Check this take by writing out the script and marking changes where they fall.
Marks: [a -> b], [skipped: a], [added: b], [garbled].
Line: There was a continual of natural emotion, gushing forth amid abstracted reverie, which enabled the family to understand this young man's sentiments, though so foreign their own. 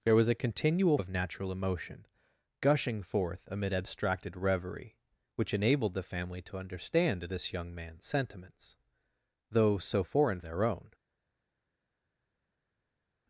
There was a continual of natural emotion, gushing forth amid abstracted reverie, which enabled the family to understand this young man's sentiments, though so foreign their own.